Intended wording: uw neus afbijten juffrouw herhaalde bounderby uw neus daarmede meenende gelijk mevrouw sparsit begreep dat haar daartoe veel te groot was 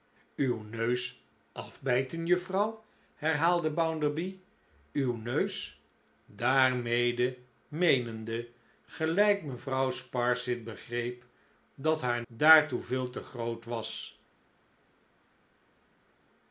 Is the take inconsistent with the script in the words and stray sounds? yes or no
no